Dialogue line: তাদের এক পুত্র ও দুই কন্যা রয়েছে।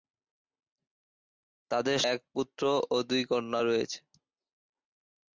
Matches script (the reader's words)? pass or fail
pass